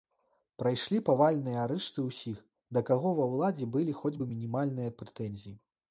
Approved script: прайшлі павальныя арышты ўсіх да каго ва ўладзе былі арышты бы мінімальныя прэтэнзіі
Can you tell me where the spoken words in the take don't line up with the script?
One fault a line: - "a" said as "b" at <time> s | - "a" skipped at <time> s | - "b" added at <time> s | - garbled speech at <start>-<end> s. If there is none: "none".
- "арышты" said as "хоць" at 4.0 s